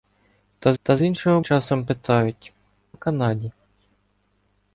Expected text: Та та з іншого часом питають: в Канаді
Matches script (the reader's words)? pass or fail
pass